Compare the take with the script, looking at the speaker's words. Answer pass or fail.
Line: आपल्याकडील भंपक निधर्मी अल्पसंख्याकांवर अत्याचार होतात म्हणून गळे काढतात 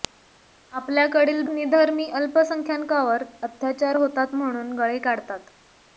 fail